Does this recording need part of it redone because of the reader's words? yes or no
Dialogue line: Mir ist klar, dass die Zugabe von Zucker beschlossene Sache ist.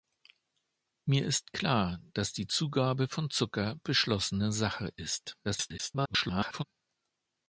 yes